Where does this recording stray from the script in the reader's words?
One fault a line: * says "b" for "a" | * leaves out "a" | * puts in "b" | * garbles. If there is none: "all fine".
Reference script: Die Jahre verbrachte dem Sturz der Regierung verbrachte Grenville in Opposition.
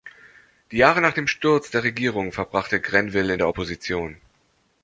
* says "nach" for "verbrachte"
* puts in "der"